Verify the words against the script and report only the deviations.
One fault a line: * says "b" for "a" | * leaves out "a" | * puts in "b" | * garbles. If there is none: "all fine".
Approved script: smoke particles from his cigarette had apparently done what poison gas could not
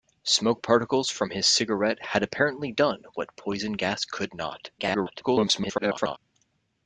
* garbles